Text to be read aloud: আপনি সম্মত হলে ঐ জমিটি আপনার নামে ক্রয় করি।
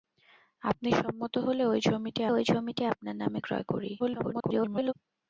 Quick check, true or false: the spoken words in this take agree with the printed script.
false